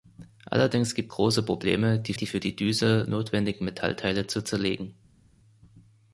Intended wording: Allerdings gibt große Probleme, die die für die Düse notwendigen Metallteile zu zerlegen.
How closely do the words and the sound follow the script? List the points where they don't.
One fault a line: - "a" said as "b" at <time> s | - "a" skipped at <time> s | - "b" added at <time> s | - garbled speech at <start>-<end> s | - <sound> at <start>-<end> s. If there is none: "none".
none